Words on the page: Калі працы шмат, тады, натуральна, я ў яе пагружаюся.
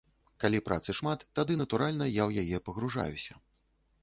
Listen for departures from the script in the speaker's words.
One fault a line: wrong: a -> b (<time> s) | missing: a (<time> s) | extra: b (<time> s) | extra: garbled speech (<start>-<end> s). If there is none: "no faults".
no faults